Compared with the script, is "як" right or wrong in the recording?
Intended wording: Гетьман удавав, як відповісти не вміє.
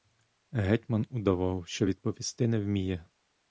wrong